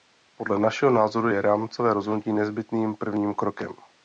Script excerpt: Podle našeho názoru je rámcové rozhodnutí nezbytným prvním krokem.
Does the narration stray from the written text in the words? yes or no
no